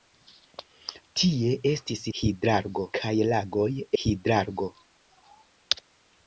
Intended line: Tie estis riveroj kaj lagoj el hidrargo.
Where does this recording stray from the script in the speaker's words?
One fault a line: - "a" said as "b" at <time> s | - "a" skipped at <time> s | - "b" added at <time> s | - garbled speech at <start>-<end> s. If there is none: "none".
- "riveroj" said as "hidrargo" at 2.2 s
- "el" skipped at 3.7 s